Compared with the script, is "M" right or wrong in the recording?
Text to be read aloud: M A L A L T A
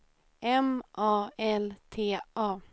right